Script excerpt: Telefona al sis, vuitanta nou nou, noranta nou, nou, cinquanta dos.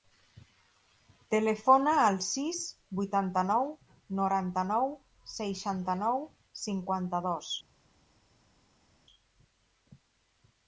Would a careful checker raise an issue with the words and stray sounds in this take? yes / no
yes